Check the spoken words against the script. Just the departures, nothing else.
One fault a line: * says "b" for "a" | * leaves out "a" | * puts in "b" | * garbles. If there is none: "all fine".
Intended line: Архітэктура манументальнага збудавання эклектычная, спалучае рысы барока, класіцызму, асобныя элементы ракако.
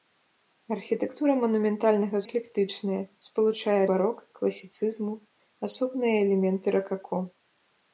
* leaves out "збудавання"
* leaves out "рысы"